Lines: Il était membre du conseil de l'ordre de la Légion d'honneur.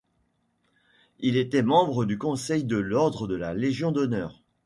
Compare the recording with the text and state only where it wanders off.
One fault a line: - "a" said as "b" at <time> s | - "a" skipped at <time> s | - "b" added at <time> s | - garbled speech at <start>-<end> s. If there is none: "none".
none